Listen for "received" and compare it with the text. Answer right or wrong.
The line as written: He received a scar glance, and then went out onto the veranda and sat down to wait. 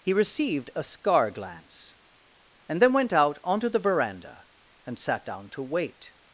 right